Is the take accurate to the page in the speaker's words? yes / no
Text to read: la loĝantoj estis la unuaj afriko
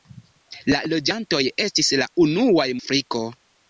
yes